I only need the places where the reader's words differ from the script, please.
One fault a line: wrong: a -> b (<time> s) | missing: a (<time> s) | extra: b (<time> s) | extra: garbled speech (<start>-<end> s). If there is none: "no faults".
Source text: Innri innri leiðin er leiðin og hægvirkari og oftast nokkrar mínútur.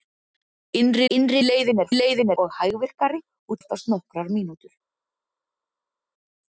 no faults